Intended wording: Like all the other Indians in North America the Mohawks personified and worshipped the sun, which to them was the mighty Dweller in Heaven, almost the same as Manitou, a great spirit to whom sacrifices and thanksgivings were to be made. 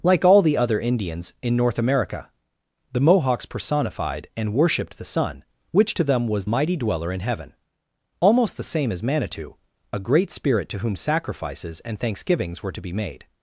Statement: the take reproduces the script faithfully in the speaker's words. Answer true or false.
false